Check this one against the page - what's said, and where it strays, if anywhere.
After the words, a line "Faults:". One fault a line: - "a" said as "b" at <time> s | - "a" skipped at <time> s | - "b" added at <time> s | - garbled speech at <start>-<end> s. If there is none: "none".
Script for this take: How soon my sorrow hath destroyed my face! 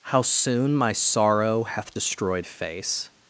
How soon my sorrow hath destroyed face!
Faults:
- "my" skipped at 2.5 s